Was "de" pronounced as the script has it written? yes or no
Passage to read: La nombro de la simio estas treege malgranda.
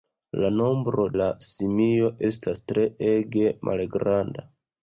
no